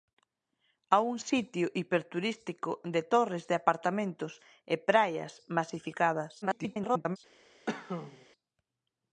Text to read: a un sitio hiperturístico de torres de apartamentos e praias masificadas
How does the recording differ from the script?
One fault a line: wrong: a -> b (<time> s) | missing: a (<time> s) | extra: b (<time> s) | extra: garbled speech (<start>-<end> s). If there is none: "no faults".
extra: garbled speech (6.4-7.2 s)